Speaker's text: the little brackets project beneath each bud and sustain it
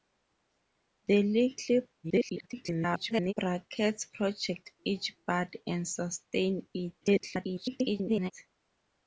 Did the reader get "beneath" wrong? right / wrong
wrong